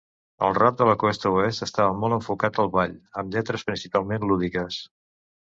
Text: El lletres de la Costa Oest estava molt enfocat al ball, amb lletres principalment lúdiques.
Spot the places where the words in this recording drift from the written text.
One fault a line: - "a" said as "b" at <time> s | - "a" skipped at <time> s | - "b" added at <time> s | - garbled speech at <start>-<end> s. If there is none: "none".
- "lletres" said as "rap" at 0.6 s